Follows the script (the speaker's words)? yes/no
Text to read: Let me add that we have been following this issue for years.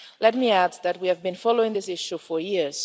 yes